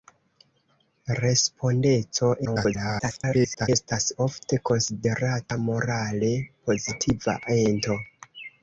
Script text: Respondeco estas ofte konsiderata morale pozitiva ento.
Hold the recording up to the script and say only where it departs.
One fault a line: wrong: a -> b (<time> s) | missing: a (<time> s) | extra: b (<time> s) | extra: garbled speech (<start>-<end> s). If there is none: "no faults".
extra: garbled speech (2.4-3.7 s)